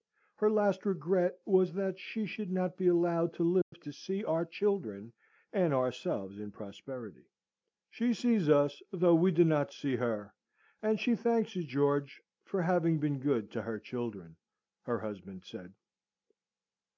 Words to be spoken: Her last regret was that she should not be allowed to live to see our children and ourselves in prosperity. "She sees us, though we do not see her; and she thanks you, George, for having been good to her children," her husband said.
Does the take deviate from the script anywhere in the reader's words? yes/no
no